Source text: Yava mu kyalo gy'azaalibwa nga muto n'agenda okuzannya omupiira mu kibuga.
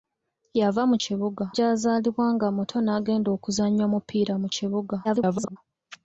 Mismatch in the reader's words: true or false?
true